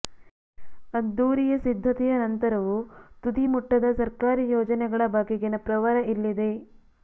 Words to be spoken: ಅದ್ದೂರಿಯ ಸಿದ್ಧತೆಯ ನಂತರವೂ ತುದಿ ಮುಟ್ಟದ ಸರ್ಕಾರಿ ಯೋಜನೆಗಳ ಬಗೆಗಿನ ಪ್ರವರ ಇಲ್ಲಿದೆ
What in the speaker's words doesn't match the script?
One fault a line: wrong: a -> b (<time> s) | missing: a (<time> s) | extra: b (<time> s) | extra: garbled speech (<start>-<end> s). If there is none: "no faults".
no faults